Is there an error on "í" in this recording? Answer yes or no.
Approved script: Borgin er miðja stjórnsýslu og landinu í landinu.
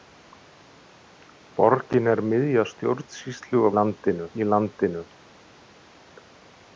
no